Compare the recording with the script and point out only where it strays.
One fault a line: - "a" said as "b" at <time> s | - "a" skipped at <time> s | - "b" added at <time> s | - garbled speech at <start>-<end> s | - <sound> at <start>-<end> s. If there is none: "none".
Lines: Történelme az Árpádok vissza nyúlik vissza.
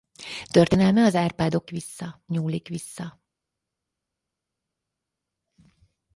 none